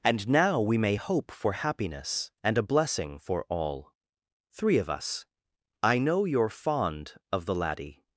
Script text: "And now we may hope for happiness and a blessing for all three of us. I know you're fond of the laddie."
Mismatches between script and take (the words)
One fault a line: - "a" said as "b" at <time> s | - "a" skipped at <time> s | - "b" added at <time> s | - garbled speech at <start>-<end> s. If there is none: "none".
none